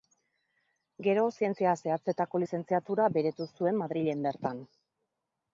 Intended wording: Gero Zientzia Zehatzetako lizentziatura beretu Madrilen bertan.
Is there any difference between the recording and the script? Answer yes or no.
yes